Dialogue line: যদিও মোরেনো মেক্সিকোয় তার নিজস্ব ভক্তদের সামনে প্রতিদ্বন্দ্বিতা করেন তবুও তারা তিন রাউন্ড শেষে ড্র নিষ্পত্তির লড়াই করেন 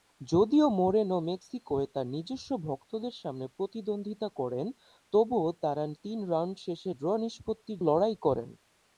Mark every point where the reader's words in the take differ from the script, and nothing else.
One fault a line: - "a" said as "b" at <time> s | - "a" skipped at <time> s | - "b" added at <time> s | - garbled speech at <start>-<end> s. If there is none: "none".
none